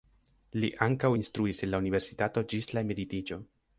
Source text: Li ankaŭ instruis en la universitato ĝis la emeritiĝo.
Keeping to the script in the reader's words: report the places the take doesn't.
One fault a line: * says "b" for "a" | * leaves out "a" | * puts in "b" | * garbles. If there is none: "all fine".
all fine